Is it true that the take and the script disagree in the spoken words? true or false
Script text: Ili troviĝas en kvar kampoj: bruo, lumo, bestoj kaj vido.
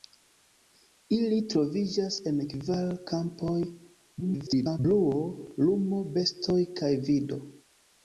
true